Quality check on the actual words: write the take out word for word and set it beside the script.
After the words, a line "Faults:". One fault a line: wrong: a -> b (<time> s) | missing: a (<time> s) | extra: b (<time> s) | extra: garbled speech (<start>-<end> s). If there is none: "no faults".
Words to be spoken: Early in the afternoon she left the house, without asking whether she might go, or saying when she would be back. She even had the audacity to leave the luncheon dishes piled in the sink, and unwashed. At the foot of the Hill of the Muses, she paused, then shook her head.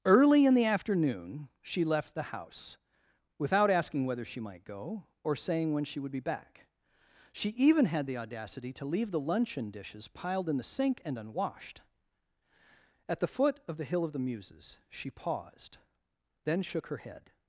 Early in the afternoon she left the house, without asking whether she might go, or saying when she would be back. She even had the audacity to leave the luncheon dishes piled in the sink, and unwashed. At the foot of the Hill of the Muses, she paused, then shook her head.
Faults:
no faults